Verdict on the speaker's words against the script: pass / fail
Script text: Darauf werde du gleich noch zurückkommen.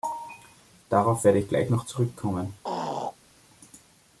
fail